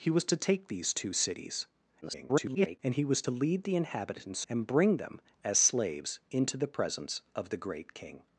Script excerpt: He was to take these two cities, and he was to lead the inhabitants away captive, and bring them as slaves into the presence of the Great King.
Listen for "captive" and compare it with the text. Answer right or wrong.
wrong